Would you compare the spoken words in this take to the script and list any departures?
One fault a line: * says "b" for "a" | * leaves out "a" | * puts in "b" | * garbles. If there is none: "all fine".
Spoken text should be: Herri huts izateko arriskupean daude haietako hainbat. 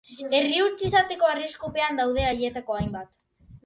all fine